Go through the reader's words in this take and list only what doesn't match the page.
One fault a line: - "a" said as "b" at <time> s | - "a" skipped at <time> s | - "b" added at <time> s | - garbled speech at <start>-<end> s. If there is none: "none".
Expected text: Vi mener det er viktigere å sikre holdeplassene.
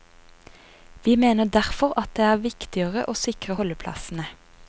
- "derfor at" added at 1.4 s